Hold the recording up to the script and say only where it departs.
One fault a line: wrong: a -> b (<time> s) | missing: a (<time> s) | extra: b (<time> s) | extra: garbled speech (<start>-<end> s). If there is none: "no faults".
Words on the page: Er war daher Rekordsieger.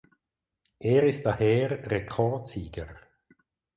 wrong: war -> ist (1.0 s)